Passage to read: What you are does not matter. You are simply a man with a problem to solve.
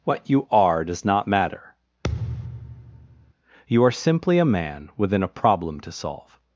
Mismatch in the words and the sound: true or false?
true